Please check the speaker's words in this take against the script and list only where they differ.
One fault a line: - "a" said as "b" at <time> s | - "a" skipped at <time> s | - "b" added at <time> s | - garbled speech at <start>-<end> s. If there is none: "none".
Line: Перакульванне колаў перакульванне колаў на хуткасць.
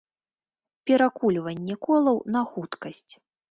- "перакульванне колаў" skipped at 2.2 s